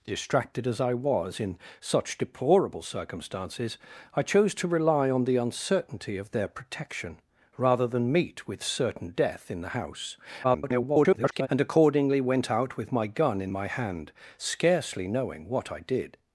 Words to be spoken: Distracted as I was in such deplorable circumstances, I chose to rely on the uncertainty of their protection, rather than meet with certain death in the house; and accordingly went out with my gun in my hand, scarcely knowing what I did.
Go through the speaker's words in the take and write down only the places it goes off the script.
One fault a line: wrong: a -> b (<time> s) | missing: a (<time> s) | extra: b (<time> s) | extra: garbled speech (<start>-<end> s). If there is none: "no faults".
extra: garbled speech (10.4-11.5 s)